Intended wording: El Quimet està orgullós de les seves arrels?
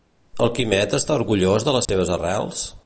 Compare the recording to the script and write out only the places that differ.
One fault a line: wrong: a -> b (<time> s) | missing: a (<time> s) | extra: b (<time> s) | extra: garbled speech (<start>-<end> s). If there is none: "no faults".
no faults